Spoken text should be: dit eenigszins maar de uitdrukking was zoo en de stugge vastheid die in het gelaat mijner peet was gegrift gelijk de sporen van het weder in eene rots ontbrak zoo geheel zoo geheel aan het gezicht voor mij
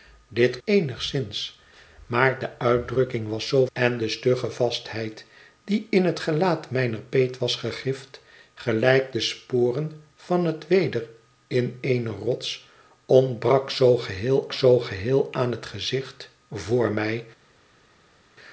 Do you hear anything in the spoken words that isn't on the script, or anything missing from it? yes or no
no